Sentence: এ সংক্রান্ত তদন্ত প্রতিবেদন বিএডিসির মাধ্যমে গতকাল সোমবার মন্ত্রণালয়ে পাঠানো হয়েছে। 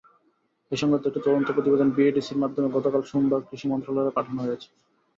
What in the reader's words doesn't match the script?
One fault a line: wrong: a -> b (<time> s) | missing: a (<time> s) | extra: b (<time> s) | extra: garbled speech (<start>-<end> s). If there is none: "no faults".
extra: একটি (1.1 s)
extra: কৃষি (3.5 s)